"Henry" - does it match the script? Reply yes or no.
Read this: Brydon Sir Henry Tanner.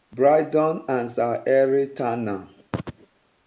yes